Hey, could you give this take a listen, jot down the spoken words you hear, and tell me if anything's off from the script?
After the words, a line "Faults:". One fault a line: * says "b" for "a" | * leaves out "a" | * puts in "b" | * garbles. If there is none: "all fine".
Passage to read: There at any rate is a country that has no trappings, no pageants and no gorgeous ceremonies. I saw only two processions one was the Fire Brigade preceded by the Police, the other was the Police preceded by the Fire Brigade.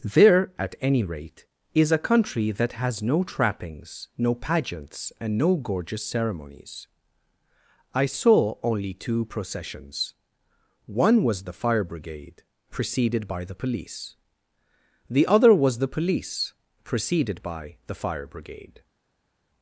There at any rate is a country that has no trappings, no pageants and no gorgeous ceremonies. I saw only two processions one was the Fire Brigade preceded by the Police, the other was the Police preceded by the Fire Brigade.
Faults:
all fine